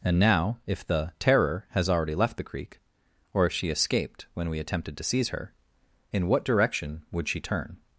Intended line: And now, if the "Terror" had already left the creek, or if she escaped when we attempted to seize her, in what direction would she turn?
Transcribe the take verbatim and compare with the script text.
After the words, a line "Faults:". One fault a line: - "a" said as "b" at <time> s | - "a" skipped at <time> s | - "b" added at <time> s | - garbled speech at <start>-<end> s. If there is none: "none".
And now, if the "Terror" has already left the creek, or if she escaped when we attempted to seize her, in what direction would she turn?
Faults:
- "had" said as "has" at 1.7 s